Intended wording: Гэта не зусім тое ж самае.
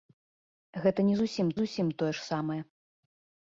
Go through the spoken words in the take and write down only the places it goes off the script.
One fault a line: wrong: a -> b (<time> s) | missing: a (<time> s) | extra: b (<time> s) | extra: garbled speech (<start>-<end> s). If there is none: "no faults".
extra: зусім (1.6 s)